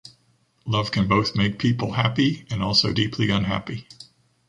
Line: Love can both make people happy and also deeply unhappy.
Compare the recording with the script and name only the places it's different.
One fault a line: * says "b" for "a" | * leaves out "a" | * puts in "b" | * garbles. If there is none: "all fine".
all fine